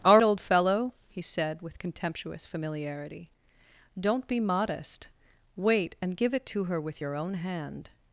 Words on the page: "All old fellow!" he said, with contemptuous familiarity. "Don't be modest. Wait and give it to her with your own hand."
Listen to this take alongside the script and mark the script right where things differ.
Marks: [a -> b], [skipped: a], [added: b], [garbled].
"All old fellow!" he said, with contemptuous familiarity. "Don't be modest. Wait and give it to her with your own hand."